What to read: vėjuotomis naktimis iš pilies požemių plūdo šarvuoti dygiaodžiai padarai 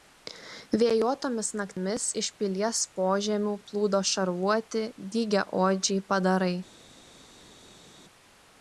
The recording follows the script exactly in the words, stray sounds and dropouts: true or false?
true